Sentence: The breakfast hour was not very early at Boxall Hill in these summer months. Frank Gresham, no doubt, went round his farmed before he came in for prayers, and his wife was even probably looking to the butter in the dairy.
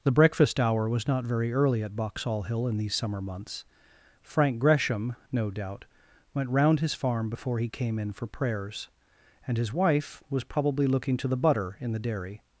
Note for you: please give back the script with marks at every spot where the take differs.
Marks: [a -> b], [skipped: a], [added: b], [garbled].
The breakfast hour was not very early at Boxall Hill in these summer months. Frank Gresham, no doubt, went round his [farmed -> farm] before he came in for prayers, and his wife was [skipped: even] probably looking to the butter in the dairy.